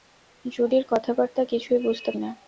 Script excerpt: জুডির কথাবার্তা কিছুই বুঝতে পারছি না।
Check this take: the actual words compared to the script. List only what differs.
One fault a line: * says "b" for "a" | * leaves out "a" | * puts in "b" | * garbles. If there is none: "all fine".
* leaves out "পারছি"